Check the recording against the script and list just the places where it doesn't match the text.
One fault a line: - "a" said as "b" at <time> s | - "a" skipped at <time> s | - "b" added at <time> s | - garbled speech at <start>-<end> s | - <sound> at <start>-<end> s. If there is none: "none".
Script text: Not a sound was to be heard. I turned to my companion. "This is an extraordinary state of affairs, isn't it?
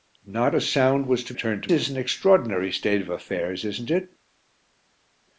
- "be heard I" skipped at 1.3 s
- "my companion This" skipped at 1.7 s